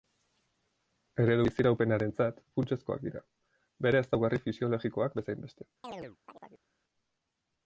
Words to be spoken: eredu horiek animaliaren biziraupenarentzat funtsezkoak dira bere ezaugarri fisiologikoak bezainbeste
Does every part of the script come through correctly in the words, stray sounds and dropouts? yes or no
no